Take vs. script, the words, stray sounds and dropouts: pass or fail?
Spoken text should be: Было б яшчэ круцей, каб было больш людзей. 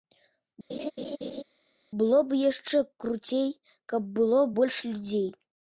fail